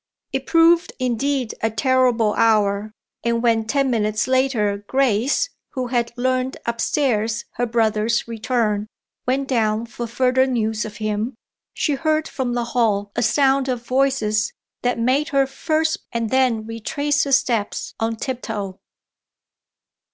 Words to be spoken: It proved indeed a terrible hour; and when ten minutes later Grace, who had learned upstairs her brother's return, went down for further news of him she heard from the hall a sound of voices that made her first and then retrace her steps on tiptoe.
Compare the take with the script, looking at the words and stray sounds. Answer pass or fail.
pass